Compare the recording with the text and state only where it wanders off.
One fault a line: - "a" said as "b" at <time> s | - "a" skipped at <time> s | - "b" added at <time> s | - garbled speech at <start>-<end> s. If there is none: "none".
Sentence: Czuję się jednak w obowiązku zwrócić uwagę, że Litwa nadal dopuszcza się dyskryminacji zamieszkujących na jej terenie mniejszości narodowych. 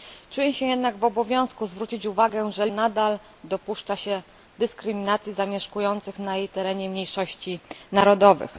- "Litwa" skipped at 2.7 s